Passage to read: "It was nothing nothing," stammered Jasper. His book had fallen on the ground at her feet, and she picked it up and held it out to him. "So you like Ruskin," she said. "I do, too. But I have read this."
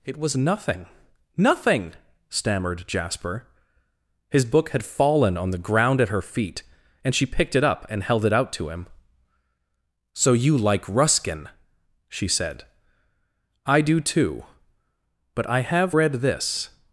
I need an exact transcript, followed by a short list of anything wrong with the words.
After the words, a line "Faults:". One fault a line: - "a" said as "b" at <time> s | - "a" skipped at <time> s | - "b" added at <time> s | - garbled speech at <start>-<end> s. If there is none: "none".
"It was nothing nothing," stammered Jasper. His book had fallen on the ground at her feet, and she picked it up and held it out to him. "So you like Ruskin," she said. "I do, too. But I have read this."
Faults:
none